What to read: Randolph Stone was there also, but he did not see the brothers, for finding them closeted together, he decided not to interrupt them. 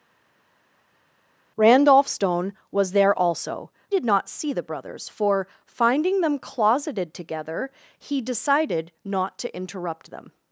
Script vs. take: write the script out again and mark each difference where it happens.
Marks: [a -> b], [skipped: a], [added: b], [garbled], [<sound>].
Randolph Stone was there also, [skipped: but he] did not see the brothers, for finding them closeted together, he decided not to interrupt them.